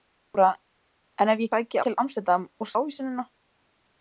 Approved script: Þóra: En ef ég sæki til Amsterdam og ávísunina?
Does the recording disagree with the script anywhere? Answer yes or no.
no